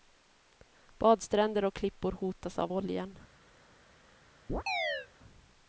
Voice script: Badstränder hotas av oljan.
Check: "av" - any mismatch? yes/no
no